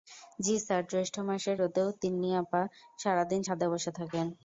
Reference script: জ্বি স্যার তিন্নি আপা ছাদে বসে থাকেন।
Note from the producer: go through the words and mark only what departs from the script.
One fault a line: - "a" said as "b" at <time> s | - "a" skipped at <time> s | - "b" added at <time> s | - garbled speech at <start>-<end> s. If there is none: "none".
- "জ্যৈষ্ঠ মাসের রোদেও" added at 0.9 s
- "সারা দিন" added at 3.0 s